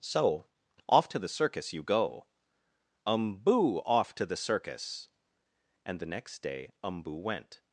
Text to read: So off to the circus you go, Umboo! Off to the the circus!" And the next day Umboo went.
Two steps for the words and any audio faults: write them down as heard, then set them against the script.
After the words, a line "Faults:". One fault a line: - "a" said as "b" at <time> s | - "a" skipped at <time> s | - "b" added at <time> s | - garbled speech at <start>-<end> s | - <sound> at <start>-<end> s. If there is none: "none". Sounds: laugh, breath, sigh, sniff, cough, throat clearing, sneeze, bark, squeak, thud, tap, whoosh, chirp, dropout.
So off to the circus you go, Umboo! Off to the circus!" And the next day Umboo went.
Faults:
- "the" skipped at 4.4 s